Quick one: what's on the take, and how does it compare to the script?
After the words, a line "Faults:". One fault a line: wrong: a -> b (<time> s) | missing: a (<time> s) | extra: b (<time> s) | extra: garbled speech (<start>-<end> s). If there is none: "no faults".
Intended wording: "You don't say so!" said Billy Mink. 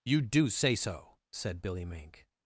"You do say so!" said Billy Mink.
Faults:
wrong: don't -> do (0.2 s)